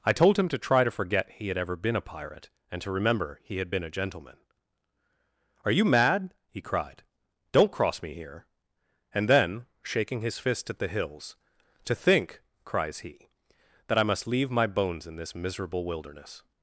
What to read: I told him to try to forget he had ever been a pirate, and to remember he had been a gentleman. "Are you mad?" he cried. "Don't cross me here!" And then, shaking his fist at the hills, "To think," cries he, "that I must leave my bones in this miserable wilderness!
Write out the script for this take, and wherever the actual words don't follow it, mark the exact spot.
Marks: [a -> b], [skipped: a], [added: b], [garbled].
I told him to try to forget he had ever been a pirate, and to remember he had been a gentleman. "Are you mad?" he cried. "Don't cross me here!" And then, shaking his fist at the hills, "To think," cries he, "that I must leave my bones in this miserable wilderness!